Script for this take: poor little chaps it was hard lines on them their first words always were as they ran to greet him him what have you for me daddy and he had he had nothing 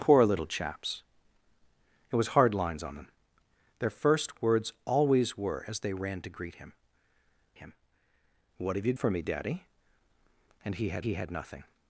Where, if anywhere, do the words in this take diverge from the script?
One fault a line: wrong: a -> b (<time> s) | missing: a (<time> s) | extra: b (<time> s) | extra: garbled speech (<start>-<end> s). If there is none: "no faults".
no faults